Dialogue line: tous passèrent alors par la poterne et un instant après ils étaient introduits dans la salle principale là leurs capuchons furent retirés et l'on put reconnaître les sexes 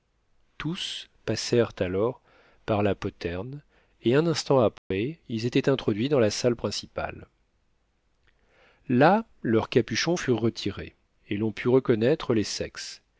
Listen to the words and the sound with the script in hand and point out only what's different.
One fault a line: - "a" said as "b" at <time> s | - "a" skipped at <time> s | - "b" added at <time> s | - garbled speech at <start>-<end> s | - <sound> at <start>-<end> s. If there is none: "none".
- dropout at 4.8-4.9 s